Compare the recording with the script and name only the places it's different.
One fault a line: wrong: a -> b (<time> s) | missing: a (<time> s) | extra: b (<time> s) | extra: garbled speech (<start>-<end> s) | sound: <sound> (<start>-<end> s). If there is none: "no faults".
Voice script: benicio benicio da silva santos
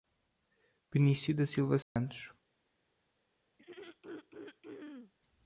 missing: benicio (1.4 s)
sound: dropout (1.8-2.0 s)
sound: throat clearing (3.6-5.1 s)